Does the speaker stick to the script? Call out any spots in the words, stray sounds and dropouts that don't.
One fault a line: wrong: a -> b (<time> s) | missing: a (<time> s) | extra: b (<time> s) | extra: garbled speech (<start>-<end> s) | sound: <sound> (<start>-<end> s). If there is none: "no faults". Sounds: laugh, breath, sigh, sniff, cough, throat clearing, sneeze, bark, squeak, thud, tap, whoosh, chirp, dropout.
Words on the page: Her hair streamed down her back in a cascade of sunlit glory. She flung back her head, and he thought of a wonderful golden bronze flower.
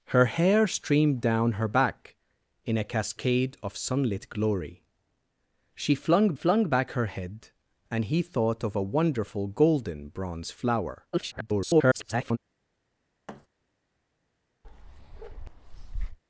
extra: flung (6.3 s)
extra: garbled speech (11.1-12.4 s)
sound: thud (13.3-13.5 s)
sound: bark (14.6-16.2 s)